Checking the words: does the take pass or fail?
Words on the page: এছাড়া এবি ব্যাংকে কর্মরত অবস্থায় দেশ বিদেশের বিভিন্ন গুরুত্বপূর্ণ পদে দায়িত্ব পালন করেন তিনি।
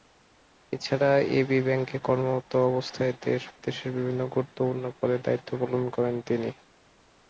pass